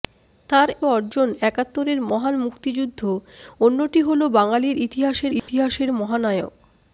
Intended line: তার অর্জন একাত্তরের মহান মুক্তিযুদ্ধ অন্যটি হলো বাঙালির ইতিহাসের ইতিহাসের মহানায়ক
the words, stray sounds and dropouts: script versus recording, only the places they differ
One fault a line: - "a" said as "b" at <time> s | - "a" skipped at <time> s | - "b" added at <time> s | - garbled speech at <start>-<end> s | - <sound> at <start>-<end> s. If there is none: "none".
- dropout at 5.4-5.5 s